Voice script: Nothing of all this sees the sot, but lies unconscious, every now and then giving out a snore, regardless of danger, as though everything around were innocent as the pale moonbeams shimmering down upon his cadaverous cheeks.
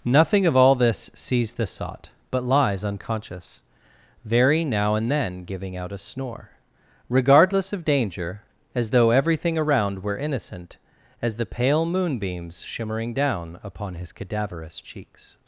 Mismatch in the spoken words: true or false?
true